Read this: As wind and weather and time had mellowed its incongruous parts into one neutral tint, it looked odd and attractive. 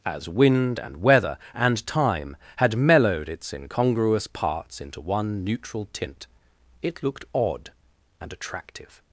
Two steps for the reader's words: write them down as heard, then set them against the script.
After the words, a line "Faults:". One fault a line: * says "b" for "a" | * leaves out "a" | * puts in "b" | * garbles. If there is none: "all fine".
As wind and weather and time had mellowed its incongruous parts into one neutral tint, it looked odd and attractive.
Faults:
all fine